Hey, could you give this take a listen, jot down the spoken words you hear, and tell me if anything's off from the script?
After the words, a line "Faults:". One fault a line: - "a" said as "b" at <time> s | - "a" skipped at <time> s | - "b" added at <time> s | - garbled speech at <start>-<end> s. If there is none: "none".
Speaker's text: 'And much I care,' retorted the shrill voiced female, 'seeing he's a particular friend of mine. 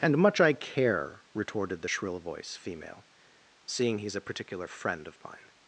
'And much I care,' retorted the shrill voice female, 'seeing he's a particular friend of mine.
Faults:
- "voiced" said as "voice" at 2.2 s